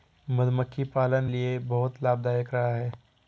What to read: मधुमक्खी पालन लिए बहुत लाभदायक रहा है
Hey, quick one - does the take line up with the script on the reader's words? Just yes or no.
yes